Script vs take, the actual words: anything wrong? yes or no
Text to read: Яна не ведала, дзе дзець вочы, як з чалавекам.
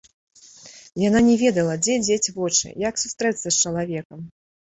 yes